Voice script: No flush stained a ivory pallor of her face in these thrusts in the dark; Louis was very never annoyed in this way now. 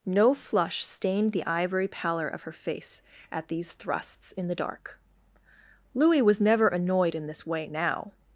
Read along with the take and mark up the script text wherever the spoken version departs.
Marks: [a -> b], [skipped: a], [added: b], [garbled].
No flush stained [a -> the] ivory pallor of her face [in -> at] these thrusts in the dark; Louis was [skipped: very] never annoyed in this way now.